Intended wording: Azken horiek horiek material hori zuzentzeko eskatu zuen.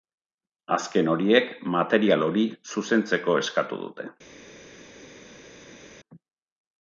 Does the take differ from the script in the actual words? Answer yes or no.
yes